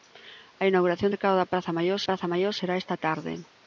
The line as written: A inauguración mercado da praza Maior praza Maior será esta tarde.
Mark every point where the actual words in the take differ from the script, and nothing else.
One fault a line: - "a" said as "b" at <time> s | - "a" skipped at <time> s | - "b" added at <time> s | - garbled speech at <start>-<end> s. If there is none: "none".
none